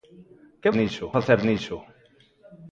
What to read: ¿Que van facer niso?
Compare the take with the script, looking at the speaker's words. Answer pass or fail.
fail